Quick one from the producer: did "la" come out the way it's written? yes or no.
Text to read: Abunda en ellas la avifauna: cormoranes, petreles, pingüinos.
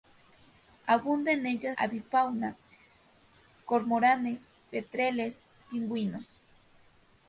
no